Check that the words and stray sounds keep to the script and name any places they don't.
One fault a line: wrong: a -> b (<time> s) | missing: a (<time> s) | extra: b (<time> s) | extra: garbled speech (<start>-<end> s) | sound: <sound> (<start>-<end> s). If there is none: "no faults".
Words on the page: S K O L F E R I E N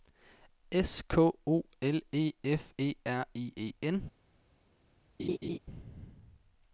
extra: E (2.1 s)
sound: laugh (5.2-5.6 s)